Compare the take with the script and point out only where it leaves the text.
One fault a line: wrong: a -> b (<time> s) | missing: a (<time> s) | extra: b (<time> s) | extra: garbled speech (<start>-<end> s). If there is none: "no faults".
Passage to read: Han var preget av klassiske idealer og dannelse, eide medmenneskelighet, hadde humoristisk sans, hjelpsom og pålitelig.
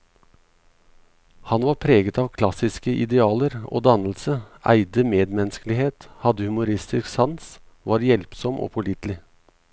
extra: var (7.8 s)